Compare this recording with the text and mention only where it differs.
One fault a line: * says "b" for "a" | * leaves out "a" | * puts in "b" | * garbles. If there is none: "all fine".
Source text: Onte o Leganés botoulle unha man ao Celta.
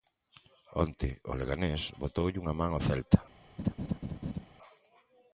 all fine